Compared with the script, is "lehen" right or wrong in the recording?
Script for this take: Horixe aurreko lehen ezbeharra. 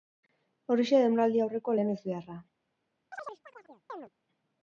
right